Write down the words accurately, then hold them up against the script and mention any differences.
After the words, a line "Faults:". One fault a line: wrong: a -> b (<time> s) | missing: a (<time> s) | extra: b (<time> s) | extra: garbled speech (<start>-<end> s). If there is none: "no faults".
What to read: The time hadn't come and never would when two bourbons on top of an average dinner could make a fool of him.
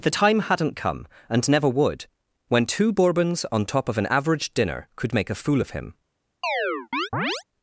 The time hadn't come and never would when two bourbons on top of an average dinner could make a fool of him.
Faults:
no faults